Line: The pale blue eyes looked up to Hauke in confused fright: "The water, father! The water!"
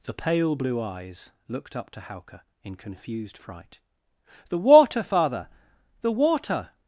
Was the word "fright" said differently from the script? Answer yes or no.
no